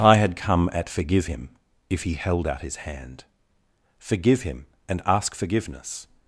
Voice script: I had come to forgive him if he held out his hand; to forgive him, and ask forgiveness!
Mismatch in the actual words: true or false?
true